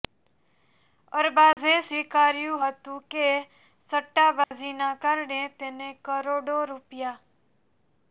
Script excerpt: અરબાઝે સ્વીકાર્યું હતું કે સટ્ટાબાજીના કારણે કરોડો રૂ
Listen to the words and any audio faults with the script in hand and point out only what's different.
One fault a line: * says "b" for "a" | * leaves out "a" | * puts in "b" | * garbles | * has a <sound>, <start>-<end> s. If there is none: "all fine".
* has a dropout, 1.5-1.6 s
* has a dropout, 4.4-4.5 s
* puts in "તેને"